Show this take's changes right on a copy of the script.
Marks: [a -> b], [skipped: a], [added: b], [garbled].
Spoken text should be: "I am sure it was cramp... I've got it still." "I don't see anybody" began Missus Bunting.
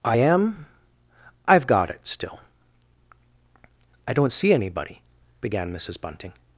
"I am [skipped: sure it was cramp...] I've got it still." "I don't see anybody" began Missus Bunting.